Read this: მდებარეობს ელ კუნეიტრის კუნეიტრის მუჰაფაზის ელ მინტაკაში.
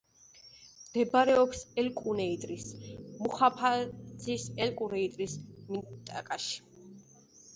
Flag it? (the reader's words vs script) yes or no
yes